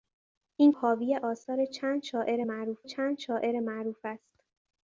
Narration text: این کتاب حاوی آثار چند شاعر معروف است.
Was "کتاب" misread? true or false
true